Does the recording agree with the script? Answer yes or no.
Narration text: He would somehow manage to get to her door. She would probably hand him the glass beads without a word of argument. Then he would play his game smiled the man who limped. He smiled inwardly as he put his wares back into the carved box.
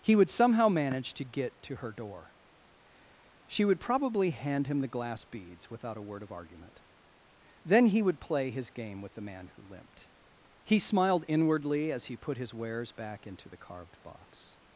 no